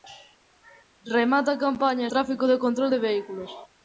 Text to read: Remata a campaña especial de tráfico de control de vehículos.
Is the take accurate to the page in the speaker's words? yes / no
no